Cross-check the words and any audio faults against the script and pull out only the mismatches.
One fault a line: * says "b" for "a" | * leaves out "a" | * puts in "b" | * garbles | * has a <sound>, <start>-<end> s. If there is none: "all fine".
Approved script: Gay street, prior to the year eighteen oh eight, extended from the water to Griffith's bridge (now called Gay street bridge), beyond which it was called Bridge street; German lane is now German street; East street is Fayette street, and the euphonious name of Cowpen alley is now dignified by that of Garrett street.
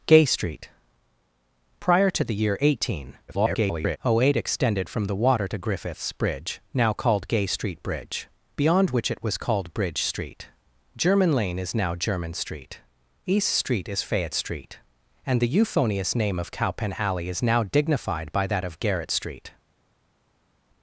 * garbles